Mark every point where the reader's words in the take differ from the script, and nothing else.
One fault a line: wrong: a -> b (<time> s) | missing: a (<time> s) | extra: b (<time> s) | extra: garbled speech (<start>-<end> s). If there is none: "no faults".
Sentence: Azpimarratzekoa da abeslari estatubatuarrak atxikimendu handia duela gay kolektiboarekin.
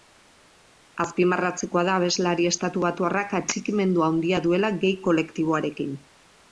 no faults